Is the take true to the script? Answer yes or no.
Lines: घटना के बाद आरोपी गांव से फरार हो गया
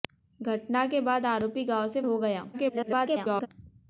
no